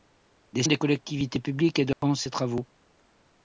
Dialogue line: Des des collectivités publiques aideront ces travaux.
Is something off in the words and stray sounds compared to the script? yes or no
yes